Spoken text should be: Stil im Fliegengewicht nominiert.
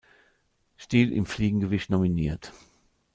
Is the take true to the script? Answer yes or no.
yes